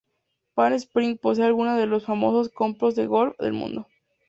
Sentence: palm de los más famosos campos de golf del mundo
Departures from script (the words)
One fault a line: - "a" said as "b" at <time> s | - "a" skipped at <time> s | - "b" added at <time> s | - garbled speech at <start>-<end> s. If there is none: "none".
- "springs posee algunos" added at 0.7 s